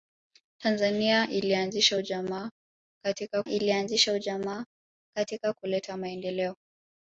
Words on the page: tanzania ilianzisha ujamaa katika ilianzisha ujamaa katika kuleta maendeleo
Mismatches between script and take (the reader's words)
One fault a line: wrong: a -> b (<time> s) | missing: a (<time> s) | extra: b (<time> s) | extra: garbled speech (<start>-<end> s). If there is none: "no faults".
no faults